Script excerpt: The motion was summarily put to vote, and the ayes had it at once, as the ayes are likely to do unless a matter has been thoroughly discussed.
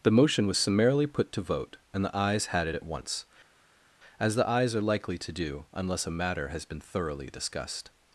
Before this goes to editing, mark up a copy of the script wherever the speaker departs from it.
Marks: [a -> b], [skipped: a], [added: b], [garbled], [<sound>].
The motion was summarily put to vote, and the ayes had it at once, as the ayes are likely to do unless a matter has been thoroughly discussed.